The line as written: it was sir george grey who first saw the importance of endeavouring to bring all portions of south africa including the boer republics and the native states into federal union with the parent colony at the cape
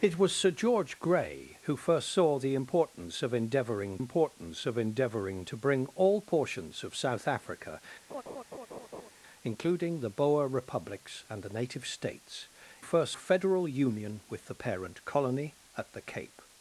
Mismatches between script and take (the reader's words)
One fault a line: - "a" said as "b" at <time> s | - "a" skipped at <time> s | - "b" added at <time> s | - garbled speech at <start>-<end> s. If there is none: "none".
- "importance of endeavouring" added at 4.0 s
- "into" said as "first" at 12.8 s